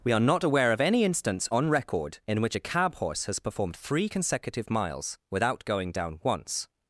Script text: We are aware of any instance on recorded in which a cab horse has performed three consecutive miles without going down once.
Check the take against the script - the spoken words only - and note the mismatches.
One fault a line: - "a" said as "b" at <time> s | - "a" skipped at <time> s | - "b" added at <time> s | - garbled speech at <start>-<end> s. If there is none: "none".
- "not" added at 0.2 s
- "recorded" said as "record" at 1.7 s